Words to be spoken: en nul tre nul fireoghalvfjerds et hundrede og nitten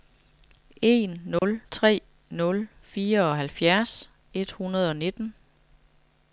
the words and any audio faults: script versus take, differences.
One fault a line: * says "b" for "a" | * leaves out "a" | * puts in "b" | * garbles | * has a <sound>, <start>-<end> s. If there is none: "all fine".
* has a dropout, 1.4-1.4 s